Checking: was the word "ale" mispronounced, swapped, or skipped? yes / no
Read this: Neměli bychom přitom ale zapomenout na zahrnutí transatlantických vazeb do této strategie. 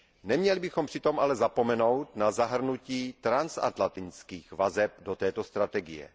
no